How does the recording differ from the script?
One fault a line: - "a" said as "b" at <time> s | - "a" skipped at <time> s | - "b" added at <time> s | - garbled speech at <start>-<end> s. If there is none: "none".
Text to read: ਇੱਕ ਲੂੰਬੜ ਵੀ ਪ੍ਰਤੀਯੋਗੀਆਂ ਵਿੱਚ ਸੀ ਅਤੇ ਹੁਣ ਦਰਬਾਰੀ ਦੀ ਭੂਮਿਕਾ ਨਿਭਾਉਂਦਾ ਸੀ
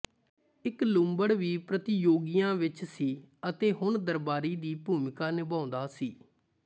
none